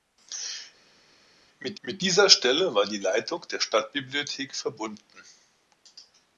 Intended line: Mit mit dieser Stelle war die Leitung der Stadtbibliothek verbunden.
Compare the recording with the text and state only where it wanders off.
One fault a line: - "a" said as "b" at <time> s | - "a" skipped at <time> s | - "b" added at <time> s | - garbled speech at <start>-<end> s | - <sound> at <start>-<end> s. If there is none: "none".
none